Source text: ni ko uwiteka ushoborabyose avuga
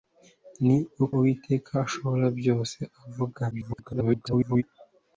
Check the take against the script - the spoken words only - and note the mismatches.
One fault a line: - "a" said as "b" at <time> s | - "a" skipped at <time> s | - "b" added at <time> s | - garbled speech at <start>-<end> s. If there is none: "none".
- "ko" skipped at 0.8 s
- garbled speech at 3.5-4.6 s